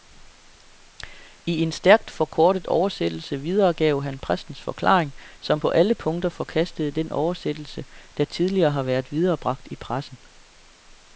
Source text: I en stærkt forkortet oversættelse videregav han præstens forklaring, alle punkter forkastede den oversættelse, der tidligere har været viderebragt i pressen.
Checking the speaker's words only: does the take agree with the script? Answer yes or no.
no